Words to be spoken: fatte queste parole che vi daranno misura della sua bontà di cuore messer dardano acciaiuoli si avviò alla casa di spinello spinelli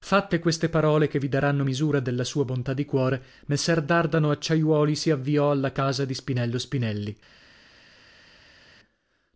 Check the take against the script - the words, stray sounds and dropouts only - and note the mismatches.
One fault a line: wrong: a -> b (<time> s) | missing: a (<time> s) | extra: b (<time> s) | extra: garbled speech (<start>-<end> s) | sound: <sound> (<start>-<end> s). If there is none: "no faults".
no faults